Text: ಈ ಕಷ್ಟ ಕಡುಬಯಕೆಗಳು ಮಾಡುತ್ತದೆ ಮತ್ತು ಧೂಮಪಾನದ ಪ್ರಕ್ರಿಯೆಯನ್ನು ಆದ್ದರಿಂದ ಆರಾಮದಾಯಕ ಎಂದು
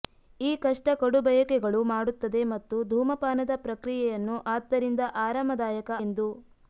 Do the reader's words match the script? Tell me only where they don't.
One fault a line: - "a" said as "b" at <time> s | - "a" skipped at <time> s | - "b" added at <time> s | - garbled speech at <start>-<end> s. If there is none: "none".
none